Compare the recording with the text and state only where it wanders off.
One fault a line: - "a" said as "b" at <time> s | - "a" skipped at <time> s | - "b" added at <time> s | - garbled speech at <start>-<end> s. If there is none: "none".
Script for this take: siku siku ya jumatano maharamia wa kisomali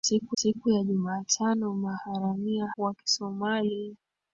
none